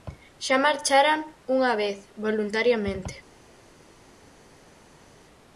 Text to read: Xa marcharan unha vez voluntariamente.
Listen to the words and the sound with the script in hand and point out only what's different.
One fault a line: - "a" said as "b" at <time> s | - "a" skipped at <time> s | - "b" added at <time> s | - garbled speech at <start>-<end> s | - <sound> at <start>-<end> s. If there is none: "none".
none